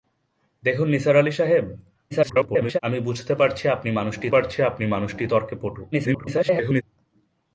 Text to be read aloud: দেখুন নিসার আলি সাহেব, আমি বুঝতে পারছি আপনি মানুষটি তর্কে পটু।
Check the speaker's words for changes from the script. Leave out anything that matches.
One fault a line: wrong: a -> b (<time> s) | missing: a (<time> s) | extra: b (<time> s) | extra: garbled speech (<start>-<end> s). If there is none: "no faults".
extra: garbled speech (2.1-2.8 s)
extra: পারছি আপনি মানুষটি (4.3 s)
extra: garbled speech (5.9-6.8 s)